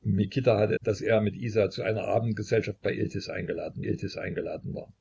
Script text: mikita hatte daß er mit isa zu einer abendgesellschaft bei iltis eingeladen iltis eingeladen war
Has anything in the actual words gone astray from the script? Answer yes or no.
no